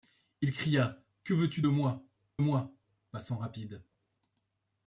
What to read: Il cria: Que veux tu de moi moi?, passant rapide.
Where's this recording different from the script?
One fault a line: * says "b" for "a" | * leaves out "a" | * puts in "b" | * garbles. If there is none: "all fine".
all fine